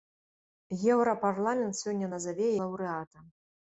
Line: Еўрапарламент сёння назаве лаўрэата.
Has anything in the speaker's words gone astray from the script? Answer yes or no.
no